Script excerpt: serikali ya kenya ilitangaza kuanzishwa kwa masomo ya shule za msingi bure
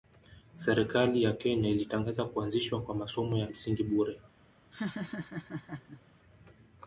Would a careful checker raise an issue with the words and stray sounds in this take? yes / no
yes